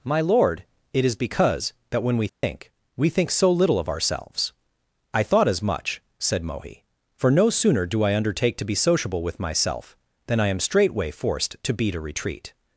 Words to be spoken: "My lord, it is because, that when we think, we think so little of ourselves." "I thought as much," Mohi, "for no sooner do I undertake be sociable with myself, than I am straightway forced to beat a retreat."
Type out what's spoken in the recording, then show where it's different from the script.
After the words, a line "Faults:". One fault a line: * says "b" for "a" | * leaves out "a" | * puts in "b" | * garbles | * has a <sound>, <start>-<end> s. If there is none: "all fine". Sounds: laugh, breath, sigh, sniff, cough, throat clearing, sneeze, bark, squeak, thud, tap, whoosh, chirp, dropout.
"My lord, it is because, that when we think, we think so little of ourselves." "I thought as much," said Mohi, "for no sooner do I undertake to be sociable with myself, than I am straightway forced to beat a retreat."
Faults:
* has a dropout, 2.3-2.4 s
* puts in "said"
* puts in "to"